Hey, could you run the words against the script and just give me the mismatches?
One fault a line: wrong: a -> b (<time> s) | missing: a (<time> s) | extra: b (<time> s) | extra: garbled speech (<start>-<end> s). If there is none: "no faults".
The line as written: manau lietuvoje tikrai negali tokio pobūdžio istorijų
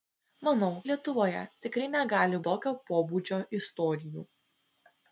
no faults